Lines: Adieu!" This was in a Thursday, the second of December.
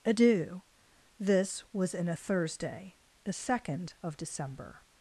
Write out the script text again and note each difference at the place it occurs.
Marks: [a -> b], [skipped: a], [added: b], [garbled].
Adieu!" This was in a Thursday, the second of December.